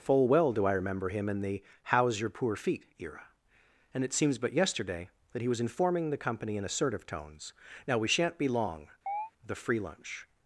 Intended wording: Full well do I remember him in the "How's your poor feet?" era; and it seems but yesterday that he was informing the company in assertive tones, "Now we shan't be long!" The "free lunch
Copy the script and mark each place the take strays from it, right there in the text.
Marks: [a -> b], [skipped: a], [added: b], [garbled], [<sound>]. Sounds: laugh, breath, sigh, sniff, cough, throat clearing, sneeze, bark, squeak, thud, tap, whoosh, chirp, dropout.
Full well do I remember him in the "How's your poor feet?" era; and it seems but yesterday that he was informing the company in assertive tones, "Now we shan't be long!" [chirp] The "free lunch